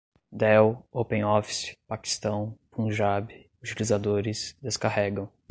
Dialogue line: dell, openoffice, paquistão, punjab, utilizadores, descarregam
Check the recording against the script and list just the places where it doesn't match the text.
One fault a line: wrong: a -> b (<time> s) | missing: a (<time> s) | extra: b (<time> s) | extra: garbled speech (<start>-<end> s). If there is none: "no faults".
no faults